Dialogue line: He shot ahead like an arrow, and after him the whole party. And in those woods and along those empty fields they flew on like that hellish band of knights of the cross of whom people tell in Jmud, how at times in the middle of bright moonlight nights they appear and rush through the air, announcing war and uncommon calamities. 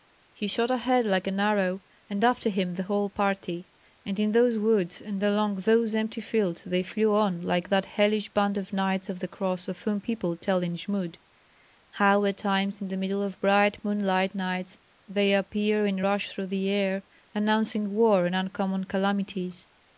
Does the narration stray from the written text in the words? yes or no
no